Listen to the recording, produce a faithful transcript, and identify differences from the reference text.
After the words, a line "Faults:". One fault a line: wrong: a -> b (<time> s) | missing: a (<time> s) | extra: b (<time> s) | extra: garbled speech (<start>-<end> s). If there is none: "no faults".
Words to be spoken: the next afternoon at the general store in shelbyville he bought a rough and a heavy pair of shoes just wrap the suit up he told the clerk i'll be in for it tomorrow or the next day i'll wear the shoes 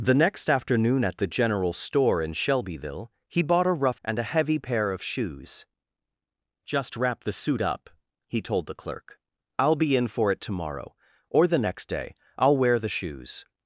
the next afternoon at the general store in shelbyville he bought a rough and a heavy pair of shoes just wrap the suit up he told the clerk i'll be in for it tomorrow or the next day i'll wear the shoes
Faults:
no faults